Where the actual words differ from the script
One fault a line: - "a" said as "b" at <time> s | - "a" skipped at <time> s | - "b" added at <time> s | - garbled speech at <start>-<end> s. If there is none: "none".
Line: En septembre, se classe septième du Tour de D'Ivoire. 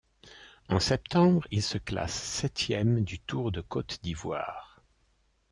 - "il" added at 1.5 s
- "Côte" added at 3.6 s